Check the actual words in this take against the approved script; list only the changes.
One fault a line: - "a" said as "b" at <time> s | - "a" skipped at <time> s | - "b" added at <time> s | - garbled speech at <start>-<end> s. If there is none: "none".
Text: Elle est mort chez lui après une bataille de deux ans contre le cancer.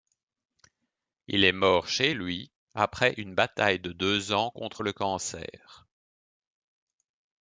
- "Elle" said as "Il" at 1.3 s